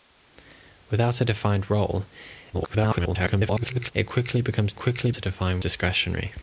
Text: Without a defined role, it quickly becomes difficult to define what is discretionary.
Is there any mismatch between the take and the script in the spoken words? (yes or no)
yes